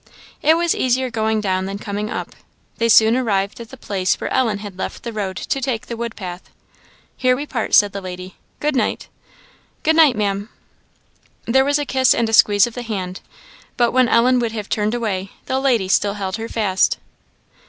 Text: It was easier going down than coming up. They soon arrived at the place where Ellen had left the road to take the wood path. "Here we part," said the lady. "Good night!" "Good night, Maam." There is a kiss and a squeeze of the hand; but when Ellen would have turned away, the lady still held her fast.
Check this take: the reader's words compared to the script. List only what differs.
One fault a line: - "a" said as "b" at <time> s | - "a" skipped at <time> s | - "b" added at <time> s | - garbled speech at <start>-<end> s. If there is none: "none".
- "is" said as "was" at 11.6 s